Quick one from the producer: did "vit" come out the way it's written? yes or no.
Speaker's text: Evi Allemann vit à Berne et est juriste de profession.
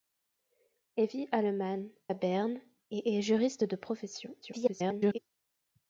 no